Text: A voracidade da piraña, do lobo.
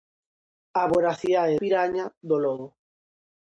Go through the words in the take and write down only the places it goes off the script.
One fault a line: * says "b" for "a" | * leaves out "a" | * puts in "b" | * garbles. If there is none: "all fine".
* leaves out "da"